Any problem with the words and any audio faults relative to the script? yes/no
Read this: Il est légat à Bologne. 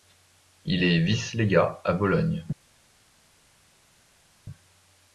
yes